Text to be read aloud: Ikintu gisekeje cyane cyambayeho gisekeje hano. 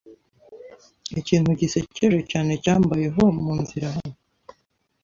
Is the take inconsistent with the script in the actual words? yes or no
yes